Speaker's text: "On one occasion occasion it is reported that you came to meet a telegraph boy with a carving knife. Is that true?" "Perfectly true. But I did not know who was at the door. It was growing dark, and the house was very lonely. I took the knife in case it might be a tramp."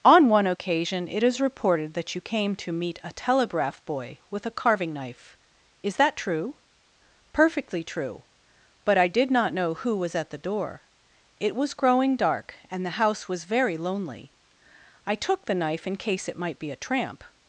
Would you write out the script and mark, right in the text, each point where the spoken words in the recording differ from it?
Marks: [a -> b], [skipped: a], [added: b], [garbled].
"On one occasion [skipped: occasion] it is reported that you came to meet a telegraph boy with a carving knife. Is that true?" "Perfectly true. But I did not know who was at the door. It was growing dark, and the house was very lonely. I took the knife in case it might be a tramp."